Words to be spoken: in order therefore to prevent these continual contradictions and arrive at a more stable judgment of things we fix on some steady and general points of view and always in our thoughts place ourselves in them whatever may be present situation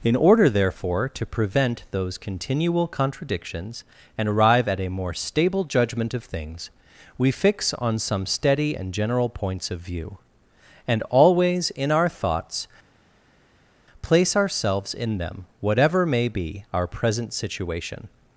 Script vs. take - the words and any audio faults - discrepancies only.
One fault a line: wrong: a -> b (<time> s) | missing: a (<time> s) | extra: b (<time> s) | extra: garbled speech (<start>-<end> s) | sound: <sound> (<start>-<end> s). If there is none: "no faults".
wrong: these -> those (1.9 s)
extra: our (16.7 s)